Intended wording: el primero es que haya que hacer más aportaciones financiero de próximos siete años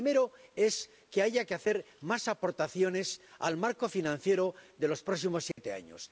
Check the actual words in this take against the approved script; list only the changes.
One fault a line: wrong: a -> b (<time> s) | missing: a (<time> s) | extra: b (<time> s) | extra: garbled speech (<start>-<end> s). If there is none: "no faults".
extra: al marco (3.4 s)
extra: los (4.9 s)